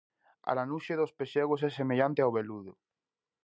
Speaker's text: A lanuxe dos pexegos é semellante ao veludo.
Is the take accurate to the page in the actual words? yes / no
yes